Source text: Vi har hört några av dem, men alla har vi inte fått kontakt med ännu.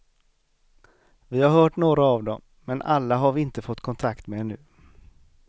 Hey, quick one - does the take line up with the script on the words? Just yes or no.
yes